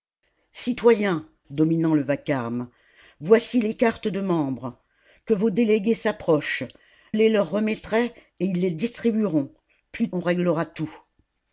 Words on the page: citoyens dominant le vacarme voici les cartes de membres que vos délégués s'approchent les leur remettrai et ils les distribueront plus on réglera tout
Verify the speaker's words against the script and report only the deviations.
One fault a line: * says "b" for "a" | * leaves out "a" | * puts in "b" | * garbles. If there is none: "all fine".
all fine